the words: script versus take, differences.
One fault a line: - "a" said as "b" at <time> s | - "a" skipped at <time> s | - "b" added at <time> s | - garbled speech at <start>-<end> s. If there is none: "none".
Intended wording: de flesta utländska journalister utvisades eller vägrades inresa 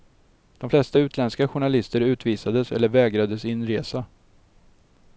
none